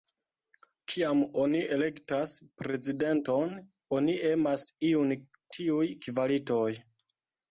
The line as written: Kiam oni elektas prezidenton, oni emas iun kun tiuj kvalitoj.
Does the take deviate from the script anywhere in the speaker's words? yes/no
yes